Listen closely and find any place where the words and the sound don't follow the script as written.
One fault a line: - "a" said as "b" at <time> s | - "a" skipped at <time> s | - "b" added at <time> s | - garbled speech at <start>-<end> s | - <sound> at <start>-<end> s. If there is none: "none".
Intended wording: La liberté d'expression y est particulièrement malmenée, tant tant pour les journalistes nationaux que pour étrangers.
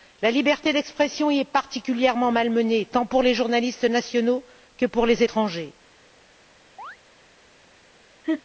- "tant" skipped at 3.1 s
- "les" added at 5.1 s
- chirp at 6.8-7.0 s
- laugh at 8.2-8.4 s